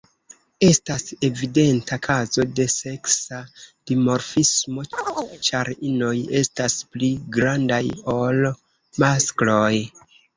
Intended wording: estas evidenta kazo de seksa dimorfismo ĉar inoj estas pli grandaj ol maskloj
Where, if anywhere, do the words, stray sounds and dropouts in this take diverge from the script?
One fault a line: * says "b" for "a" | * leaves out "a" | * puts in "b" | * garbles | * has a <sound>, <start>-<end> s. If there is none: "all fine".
* has a chirp, 4.9-5.4 s